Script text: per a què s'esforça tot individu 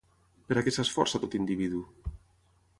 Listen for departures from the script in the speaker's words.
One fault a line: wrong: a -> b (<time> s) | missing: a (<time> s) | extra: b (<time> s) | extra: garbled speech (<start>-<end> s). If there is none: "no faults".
no faults